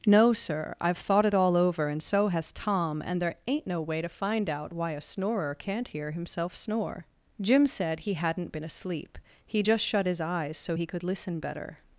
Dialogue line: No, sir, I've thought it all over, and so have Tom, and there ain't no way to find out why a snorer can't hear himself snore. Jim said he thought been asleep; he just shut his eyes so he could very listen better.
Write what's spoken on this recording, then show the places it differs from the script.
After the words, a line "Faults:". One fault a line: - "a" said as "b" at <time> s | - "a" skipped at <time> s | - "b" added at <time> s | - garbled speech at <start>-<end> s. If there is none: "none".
No, sir, I've thought it all over, and so has Tom, and there ain't no way to find out why a snorer can't hear himself snore. Jim said he hadn't been asleep; he just shut his eyes so he could listen better.
Faults:
- "have" said as "has" at 2.3 s
- "thought" said as "hadn't" at 8.1 s
- "very" skipped at 11.0 s